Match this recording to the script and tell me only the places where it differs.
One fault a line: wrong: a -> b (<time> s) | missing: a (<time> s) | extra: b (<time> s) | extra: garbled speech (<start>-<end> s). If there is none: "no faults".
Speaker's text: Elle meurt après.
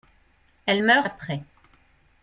no faults